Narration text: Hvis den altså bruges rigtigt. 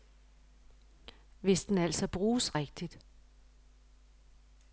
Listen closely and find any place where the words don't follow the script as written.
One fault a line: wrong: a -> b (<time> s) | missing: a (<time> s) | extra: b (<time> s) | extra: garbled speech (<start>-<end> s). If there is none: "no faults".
no faults